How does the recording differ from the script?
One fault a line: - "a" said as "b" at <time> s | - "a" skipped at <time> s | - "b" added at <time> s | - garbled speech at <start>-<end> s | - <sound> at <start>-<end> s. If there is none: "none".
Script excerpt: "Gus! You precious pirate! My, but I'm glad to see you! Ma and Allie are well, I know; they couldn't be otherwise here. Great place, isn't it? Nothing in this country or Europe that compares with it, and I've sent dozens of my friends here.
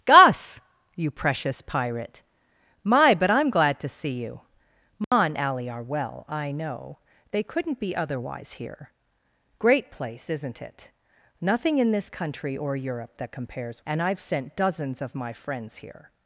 - dropout at 5.0-5.1 s
- "with it" skipped at 13.8 s